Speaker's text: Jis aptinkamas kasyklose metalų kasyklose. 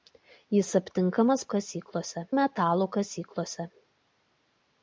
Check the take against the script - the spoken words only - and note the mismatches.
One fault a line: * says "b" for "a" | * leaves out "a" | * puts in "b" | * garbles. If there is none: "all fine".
all fine